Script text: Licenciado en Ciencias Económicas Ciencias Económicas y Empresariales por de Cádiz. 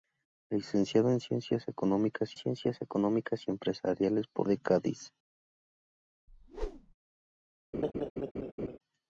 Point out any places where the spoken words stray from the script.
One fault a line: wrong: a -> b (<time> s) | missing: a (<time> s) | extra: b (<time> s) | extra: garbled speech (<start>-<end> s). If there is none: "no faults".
no faults